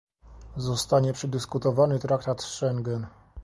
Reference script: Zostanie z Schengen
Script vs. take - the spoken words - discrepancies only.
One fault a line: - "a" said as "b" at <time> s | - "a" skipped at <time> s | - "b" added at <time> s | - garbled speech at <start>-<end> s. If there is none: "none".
- "przedyskutowany traktat" added at 1.1 s